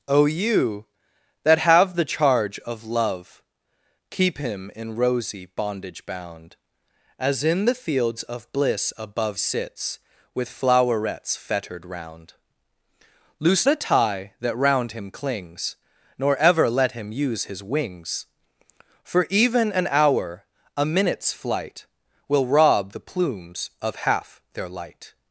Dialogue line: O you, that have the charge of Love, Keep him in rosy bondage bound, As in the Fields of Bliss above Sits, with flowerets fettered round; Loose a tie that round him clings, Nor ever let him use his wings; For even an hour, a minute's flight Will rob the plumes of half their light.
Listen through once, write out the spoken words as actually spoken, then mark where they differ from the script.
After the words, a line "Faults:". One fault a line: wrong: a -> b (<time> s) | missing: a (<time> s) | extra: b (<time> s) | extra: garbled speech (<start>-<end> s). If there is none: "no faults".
O you, that have the charge of Love, Keep him in rosy bondage bound, As in the Fields of Bliss above Sits, with flowerets fettered round; Loose a tie that round him clings, Nor ever let him use his wings; For even an hour, a minute's flight Will rob the plumes of half their light.
Faults:
no faults